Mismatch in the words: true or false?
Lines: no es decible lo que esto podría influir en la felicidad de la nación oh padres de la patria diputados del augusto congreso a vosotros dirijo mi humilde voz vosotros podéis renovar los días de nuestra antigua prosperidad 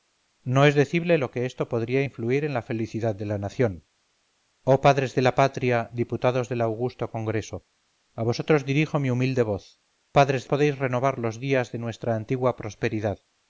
true